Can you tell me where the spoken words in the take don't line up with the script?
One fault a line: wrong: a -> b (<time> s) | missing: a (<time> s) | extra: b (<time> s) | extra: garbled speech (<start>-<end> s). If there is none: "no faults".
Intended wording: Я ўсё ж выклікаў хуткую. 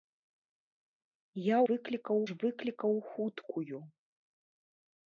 wrong: ўсё -> выклікаў (1.7 s)